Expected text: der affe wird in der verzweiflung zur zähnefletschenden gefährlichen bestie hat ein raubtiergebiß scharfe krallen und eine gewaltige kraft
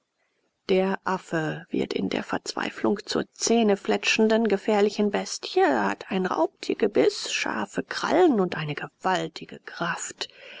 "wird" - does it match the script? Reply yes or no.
yes